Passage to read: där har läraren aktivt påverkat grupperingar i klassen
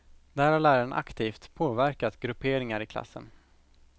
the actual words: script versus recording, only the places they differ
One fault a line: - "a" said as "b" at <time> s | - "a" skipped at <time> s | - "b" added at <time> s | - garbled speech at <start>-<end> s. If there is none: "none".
none